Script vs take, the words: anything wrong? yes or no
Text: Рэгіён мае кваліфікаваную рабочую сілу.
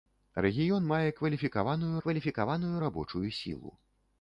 yes